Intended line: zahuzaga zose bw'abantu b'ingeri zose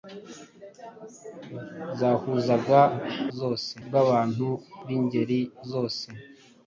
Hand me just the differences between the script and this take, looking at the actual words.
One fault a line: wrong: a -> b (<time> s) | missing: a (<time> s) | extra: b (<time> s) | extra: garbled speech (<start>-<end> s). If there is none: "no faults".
no faults